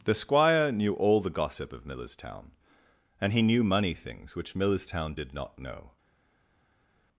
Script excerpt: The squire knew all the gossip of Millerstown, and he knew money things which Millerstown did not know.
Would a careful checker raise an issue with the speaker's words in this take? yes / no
no